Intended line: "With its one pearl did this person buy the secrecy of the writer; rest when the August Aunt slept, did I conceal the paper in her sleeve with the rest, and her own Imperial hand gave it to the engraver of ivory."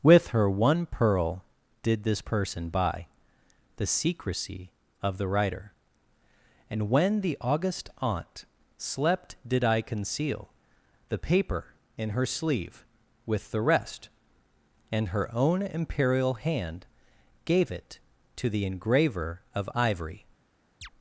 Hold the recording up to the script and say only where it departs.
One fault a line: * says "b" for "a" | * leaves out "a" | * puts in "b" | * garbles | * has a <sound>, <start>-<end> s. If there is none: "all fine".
* says "her" for "its"
* says "and" for "rest"
* has a chirp, 20.8-20.9 s